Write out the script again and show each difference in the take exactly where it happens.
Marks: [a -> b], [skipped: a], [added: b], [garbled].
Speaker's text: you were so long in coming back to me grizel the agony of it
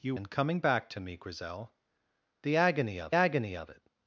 you [skipped: were so long] in coming back to me grizel the agony of [added: agony of] it